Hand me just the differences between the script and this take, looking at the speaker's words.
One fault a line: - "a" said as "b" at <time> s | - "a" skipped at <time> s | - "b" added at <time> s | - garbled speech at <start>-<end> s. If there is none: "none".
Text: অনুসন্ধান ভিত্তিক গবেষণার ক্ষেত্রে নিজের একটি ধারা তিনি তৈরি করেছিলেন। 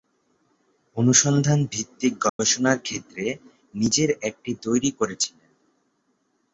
- "ধারা তিনি" skipped at 4.5 s